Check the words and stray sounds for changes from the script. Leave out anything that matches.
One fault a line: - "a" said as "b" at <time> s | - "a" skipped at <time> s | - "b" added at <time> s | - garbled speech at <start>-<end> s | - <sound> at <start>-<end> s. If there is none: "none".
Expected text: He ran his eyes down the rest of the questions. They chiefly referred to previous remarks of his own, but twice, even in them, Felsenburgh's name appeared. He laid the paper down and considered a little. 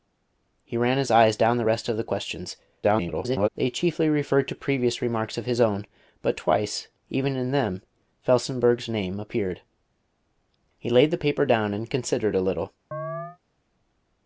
- garbled speech at 2.8-3.5 s
- chirp at 12.9-13.4 s